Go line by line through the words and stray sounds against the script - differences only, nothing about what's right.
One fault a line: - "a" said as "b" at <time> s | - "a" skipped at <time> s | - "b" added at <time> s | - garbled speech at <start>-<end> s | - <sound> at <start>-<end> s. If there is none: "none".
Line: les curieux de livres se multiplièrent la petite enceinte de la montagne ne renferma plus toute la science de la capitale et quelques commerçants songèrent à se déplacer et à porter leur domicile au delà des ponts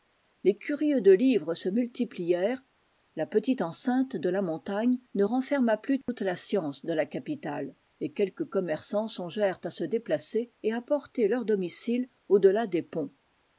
- dropout at 6.0-6.1 s